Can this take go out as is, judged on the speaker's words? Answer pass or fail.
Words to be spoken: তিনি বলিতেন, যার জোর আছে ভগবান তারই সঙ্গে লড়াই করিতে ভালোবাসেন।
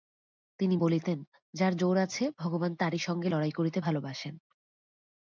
pass